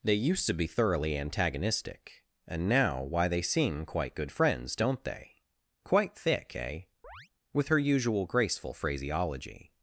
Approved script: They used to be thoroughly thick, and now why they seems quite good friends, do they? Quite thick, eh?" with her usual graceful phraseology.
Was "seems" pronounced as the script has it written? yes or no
no